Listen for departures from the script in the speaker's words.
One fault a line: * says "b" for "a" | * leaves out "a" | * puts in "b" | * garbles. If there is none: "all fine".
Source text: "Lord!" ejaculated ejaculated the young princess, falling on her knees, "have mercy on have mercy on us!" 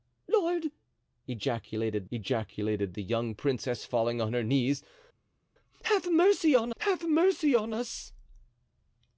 all fine